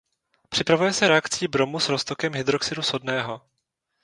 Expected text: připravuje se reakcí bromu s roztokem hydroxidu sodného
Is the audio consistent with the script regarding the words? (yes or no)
yes